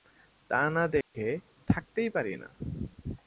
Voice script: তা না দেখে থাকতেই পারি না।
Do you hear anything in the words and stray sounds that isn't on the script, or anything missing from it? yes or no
yes